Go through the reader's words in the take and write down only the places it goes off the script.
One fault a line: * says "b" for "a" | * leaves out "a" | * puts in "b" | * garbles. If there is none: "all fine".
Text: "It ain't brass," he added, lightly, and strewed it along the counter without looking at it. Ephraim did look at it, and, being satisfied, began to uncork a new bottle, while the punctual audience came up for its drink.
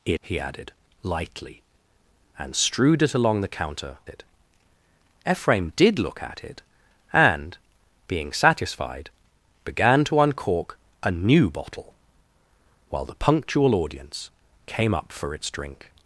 * leaves out "ain't brass"
* leaves out "without looking at"